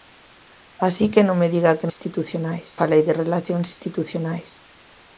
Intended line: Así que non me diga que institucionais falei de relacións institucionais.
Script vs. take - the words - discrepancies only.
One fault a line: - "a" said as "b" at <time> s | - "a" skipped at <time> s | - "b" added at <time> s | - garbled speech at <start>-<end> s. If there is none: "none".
none